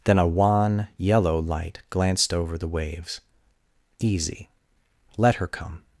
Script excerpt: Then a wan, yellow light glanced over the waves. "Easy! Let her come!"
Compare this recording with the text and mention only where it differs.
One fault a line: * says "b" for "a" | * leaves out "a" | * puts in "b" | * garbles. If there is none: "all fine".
all fine